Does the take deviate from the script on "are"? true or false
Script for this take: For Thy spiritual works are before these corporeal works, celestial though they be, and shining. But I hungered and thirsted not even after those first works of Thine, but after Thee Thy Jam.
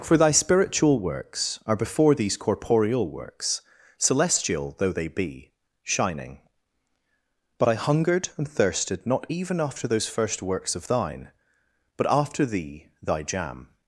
false